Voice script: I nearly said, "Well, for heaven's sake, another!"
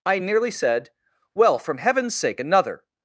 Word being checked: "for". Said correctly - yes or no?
no